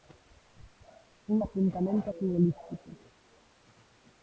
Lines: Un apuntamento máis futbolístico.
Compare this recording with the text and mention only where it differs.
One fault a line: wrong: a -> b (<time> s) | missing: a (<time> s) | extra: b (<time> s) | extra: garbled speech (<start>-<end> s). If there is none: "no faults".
missing: máis (2.1 s)